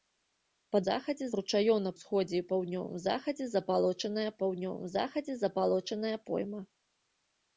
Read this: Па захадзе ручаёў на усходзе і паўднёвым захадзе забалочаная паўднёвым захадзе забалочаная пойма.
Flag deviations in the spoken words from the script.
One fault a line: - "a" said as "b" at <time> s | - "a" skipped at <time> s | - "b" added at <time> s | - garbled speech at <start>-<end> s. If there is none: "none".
none